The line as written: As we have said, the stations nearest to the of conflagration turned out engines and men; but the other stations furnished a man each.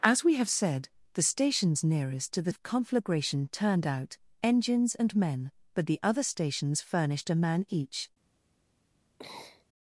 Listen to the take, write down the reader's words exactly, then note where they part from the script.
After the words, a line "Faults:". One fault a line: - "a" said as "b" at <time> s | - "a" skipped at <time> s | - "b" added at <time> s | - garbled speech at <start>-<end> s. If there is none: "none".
As we have said, the stations nearest to the of conflagration turned out engines and men; but the other stations furnished a man each.
Faults:
none